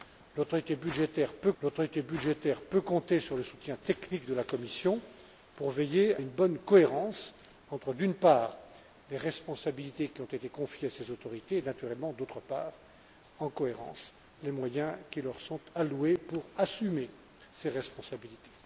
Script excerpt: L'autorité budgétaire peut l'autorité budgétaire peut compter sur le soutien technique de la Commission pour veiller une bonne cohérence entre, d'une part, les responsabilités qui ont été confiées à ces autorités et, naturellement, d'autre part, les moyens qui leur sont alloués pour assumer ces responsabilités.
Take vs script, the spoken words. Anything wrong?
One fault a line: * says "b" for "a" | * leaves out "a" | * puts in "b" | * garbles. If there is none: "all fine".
all fine